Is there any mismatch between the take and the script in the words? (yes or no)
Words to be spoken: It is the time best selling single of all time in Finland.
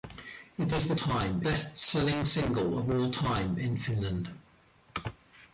no